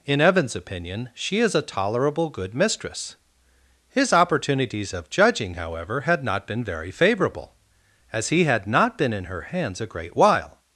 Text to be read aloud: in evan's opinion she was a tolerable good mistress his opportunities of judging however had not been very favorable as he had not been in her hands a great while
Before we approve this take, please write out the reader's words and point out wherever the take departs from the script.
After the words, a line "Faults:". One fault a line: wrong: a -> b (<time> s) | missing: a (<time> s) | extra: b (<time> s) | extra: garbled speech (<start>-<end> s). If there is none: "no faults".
in evan's opinion she is a tolerable good mistress his opportunities of judging however had not been very favorable as he had not been in her hands a great while
Faults:
wrong: was -> is (1.4 s)